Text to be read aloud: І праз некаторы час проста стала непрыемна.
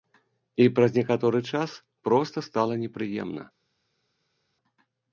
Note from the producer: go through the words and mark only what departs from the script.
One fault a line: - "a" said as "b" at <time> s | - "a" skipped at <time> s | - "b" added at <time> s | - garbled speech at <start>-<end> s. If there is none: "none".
none